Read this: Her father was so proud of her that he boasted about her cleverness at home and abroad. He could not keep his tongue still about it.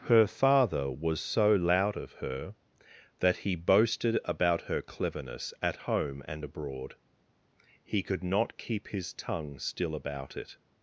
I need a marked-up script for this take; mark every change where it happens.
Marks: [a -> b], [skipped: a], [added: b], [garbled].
Her father was so [proud -> loud] of her that he boasted about her cleverness at home and abroad. He could not keep his tongue still about it.